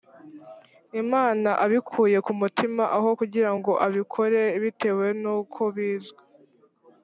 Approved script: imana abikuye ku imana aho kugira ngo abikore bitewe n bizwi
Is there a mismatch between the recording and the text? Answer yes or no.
yes